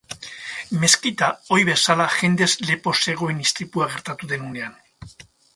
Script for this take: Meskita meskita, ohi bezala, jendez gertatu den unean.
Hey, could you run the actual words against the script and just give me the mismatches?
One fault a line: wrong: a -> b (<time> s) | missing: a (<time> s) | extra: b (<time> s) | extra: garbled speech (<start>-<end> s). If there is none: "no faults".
missing: meskita (1.3 s)
extra: lepo zegoen istripua (2.7 s)